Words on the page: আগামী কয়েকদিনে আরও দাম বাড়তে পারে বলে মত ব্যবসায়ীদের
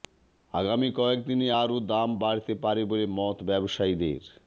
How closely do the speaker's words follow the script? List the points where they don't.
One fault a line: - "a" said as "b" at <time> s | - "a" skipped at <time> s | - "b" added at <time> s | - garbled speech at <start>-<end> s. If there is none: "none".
none